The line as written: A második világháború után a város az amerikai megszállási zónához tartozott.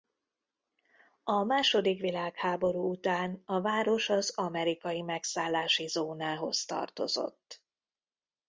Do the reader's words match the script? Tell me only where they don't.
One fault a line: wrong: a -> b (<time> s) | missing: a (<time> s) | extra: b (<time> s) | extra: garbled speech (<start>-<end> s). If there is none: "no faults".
no faults